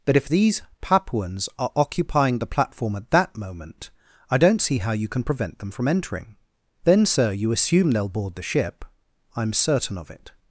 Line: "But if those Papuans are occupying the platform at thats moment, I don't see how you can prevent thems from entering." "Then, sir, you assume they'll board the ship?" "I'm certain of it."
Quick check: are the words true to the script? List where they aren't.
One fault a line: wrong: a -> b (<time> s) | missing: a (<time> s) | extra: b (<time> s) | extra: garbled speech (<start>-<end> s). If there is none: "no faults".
wrong: those -> these (0.3 s)
wrong: thats -> that (3.1 s)
wrong: thems -> them (5.6 s)